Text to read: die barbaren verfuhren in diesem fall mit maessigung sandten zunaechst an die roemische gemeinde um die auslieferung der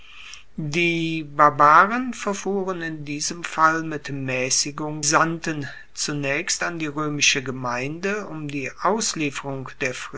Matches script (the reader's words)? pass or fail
pass